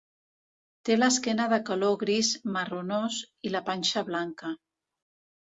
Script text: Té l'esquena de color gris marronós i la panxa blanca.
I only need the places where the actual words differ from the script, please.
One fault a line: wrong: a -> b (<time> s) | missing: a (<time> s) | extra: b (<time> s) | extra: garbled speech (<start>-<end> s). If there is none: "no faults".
no faults